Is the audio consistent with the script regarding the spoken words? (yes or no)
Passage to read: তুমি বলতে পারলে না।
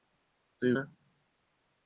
no